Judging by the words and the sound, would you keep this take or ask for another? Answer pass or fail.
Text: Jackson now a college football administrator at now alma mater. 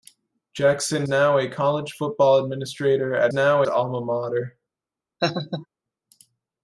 fail